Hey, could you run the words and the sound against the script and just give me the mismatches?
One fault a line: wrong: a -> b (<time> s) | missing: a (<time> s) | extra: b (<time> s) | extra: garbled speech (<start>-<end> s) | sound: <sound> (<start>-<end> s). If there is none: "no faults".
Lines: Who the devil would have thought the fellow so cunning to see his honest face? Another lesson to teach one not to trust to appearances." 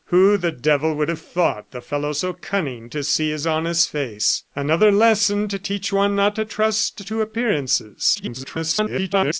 extra: garbled speech (8.1-9.4 s)